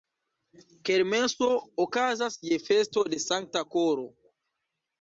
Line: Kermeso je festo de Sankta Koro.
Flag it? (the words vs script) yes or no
yes